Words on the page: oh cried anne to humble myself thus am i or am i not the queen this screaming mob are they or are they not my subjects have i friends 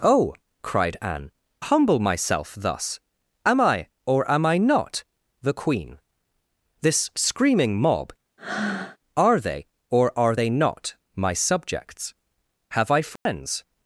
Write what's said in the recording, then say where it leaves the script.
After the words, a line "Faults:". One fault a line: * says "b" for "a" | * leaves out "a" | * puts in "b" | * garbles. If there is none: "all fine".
oh cried anne humble myself thus am i or am i not the queen this screaming mob are they or are they not my subjects have i friends
Faults:
* leaves out "to"